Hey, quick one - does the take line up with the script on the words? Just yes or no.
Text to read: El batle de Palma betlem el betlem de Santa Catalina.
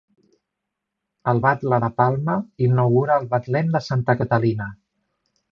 no